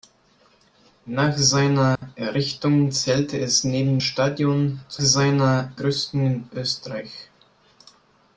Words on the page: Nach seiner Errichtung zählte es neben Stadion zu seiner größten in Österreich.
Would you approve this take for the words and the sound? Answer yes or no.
no